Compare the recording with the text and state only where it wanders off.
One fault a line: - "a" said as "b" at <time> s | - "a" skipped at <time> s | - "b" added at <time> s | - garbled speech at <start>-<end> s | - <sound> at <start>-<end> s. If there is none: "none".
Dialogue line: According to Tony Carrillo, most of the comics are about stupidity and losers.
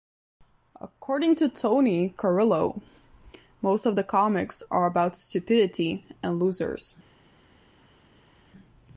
none